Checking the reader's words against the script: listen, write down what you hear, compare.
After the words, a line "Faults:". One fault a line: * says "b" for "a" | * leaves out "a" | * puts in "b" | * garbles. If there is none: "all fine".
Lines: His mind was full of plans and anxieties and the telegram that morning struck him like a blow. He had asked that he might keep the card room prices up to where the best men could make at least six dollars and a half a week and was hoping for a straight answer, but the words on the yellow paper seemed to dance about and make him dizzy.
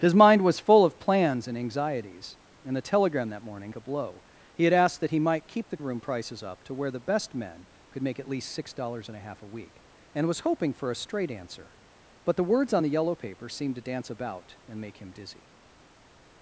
His mind was full of plans and anxieties and the telegram that morning a blow. He had asked that he might keep the room prices up to where the best men could make at least six dollars and a half a week and was hoping for a straight answer, but the words on the yellow paper seemed to dance about and make him dizzy.
Faults:
* leaves out "struck him like"
* leaves out "card"